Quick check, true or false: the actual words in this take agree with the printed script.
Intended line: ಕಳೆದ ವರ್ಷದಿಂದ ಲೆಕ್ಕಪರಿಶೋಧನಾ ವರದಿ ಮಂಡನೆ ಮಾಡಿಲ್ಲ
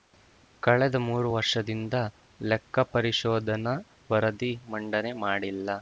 false